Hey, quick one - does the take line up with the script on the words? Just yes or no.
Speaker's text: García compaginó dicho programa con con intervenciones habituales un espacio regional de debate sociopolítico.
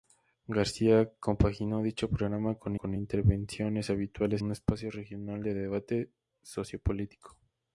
yes